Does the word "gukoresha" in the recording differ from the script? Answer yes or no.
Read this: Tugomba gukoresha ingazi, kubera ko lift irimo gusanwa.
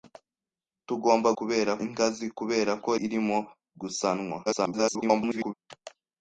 yes